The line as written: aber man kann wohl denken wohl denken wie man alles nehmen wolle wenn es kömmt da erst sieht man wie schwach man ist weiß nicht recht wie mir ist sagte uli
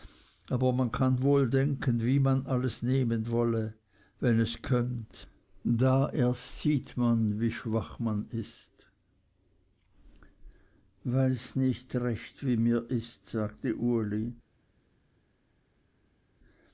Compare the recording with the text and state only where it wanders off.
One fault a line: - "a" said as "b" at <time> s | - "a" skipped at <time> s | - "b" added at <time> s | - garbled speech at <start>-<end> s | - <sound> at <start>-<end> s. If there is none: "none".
- "wohl denken" skipped at 2.0 s